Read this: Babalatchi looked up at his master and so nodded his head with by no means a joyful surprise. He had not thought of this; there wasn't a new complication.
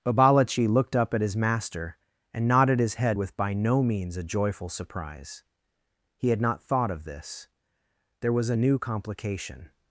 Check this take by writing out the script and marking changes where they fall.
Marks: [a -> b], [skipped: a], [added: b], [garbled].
Babalatchi looked up at his master and [skipped: so] nodded his head with by no means a joyful surprise. He had not thought of this; there [wasn't -> was] a new complication.